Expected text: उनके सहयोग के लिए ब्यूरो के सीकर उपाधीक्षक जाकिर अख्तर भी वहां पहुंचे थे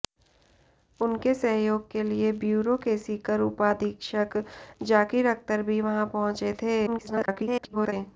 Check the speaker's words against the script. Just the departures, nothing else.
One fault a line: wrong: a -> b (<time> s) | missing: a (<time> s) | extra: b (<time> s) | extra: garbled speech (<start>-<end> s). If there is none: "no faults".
extra: garbled speech (6.9-7.9 s)